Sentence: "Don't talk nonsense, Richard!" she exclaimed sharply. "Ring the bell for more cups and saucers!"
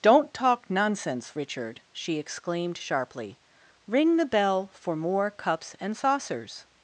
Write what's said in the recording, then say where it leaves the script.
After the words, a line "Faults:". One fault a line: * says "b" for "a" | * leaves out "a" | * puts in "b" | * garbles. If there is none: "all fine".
"Don't talk nonsense, Richard!" she exclaimed sharply. "Ring the bell for more cups and saucers!"
Faults:
all fine